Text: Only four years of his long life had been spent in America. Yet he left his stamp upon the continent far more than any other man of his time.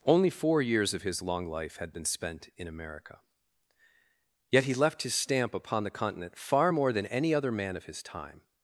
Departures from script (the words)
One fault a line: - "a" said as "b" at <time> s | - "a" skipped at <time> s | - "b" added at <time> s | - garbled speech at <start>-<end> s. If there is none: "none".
none